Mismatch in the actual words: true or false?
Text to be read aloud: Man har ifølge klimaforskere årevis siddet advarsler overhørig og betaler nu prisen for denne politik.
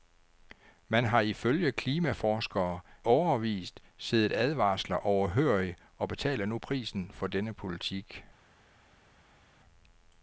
false